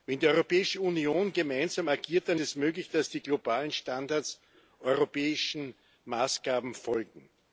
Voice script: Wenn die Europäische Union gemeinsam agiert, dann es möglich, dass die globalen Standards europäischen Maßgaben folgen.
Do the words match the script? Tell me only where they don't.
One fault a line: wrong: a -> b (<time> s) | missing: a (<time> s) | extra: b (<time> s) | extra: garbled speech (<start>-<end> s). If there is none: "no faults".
no faults